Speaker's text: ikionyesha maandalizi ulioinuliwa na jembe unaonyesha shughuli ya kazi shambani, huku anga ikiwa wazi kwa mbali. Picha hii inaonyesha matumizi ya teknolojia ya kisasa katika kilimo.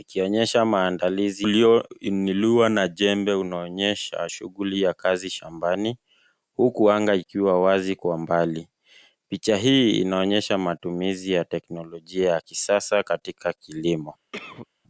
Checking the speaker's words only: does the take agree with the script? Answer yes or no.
yes